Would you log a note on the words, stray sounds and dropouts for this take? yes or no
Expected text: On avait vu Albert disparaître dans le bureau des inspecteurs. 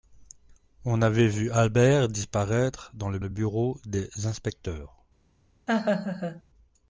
yes